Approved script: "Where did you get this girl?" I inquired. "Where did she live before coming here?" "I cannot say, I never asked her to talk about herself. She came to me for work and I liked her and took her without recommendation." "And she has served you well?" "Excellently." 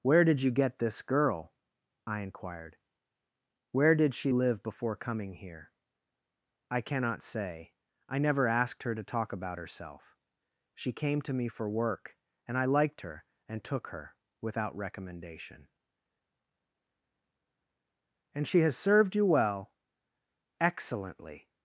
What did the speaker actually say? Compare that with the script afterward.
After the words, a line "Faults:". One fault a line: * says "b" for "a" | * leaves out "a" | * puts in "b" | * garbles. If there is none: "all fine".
"Where did you get this girl?" I inquired. "Where did she live before coming here?" "I cannot say, I never asked her to talk about herself. She came to me for work and I liked her and took her without recommendation." "And she has served you well?" "Excellently."
Faults:
all fine